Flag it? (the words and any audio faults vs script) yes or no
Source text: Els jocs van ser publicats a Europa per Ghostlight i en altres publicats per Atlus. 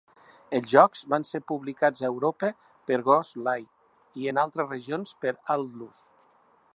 yes